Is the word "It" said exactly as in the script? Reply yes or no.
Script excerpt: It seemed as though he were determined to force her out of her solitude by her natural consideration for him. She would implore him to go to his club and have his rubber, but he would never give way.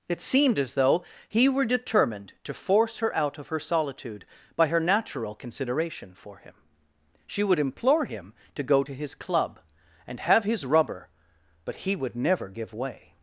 yes